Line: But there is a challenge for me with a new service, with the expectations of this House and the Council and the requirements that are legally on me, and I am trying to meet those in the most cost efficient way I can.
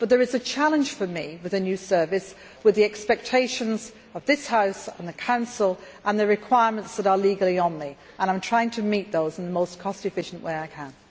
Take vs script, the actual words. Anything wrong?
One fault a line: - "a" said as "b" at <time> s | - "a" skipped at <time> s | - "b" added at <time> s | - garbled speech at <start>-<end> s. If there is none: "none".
none